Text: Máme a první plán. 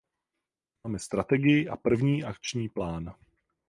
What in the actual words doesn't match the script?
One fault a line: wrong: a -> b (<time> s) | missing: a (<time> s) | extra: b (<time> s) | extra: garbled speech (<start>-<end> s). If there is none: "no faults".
extra: strategii (1.0 s)
extra: akční (2.2 s)